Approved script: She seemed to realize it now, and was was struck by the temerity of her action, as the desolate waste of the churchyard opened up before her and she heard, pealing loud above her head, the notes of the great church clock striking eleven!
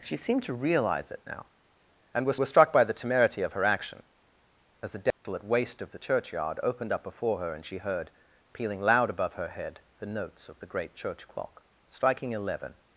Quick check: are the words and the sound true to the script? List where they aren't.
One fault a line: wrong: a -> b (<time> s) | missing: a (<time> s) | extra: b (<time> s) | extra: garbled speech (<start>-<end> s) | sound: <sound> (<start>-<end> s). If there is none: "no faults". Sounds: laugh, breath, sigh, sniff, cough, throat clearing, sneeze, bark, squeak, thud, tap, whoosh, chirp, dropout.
sound: dropout (5.1-5.2 s)